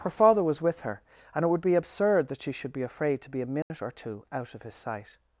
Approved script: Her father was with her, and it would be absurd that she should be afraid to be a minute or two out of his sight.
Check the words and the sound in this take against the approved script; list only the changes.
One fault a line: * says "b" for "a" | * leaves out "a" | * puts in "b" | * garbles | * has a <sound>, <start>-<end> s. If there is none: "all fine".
* has a dropout, 3.6-3.7 s